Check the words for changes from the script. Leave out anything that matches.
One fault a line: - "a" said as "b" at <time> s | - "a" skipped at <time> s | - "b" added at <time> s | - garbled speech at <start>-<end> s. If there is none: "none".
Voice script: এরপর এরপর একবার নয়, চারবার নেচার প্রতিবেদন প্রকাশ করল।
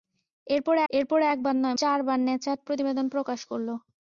none